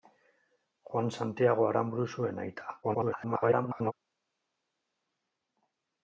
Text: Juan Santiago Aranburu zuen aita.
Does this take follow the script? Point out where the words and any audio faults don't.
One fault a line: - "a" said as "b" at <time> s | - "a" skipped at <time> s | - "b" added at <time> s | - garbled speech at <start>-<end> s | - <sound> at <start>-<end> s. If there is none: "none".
- garbled speech at 2.8-3.9 s